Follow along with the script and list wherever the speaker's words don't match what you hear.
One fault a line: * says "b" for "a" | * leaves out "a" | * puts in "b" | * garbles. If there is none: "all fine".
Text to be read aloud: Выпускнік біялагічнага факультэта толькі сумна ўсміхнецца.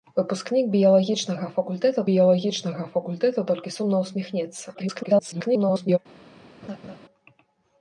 * puts in "біялагічнага факультэта"
* garbles